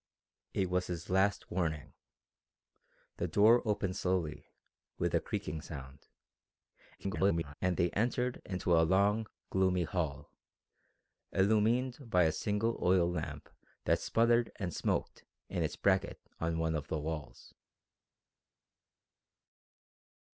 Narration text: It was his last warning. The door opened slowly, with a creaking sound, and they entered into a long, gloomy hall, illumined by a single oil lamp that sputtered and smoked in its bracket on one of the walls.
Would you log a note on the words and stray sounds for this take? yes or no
yes